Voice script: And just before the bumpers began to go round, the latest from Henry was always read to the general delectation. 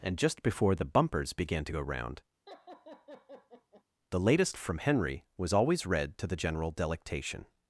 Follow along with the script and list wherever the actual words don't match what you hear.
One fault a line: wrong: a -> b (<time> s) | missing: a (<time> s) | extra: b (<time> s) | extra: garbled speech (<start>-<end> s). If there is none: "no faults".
no faults